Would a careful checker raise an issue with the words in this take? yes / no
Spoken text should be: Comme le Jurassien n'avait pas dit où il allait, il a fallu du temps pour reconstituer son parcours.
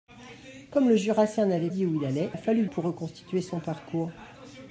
yes